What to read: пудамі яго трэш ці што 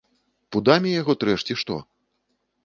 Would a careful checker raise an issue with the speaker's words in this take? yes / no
no